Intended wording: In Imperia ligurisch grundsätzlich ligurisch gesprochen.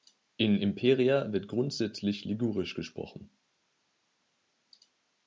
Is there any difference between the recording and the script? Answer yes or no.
yes